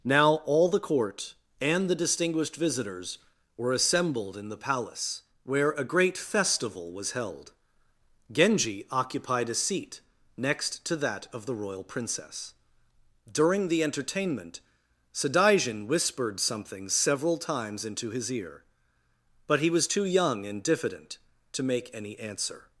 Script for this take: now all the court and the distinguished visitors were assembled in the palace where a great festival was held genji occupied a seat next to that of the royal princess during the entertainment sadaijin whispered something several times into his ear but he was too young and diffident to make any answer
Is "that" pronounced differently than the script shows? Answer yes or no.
no